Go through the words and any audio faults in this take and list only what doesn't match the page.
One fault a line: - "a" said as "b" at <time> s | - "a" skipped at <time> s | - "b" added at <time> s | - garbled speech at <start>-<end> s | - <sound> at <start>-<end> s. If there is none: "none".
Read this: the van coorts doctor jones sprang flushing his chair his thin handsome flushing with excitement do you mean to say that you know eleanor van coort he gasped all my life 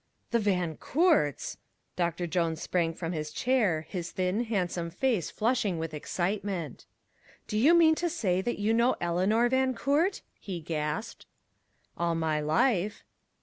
- "flushing" said as "from" at 3.0 s
- "face" added at 4.9 s